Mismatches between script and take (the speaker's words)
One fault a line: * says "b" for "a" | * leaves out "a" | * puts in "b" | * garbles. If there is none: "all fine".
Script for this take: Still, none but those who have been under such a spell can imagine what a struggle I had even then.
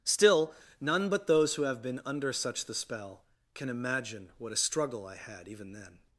* says "the" for "a"